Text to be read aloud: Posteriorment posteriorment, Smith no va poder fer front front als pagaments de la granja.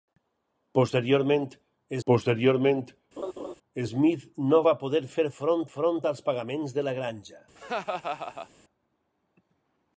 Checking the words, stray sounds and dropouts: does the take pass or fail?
fail